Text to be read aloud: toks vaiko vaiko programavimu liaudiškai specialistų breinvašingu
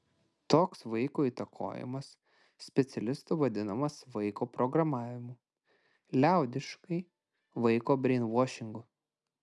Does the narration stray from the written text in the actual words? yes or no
yes